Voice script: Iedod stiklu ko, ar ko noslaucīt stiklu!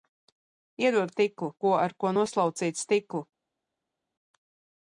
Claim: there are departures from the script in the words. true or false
false